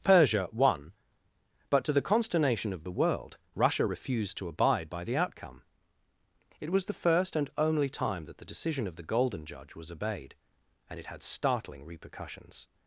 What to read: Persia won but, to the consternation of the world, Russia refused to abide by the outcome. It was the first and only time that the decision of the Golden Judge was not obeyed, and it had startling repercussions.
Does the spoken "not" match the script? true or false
false